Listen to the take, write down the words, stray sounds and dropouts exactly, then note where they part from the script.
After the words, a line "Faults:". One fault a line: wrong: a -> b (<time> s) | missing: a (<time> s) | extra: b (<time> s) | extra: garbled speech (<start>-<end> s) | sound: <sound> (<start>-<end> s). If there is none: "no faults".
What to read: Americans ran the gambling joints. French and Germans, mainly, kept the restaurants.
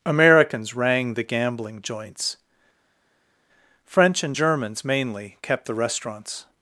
Americans rang the gambling joints. French and Germans, mainly, kept the restaurants.
Faults:
wrong: ran -> rang (0.7 s)